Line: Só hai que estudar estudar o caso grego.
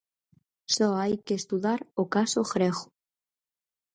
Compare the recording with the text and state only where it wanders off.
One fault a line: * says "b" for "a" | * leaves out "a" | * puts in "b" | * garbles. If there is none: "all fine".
* leaves out "estudar"